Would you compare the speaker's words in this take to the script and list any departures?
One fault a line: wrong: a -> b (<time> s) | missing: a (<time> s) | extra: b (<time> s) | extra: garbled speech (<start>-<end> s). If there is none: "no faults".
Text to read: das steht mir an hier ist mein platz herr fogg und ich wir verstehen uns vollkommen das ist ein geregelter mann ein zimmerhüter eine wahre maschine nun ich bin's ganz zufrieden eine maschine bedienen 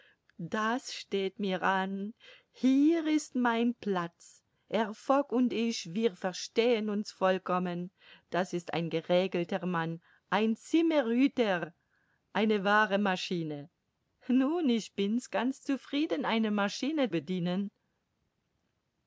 no faults